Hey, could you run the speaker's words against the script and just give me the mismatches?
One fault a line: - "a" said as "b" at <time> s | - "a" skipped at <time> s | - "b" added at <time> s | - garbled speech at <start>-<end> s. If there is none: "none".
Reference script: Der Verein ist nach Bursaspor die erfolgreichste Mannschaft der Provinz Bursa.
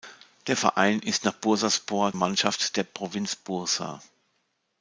- "die erfolgreichste" skipped at 2.1 s